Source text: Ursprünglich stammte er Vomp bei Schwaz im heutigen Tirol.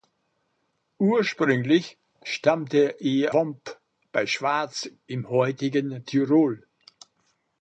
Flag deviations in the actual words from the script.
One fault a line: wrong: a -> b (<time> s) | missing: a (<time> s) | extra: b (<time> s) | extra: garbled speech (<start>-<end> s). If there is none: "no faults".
no faults